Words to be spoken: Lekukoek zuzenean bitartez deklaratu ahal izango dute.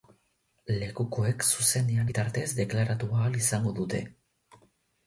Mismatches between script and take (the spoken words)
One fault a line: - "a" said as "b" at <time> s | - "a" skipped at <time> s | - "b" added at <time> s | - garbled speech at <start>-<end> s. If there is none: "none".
none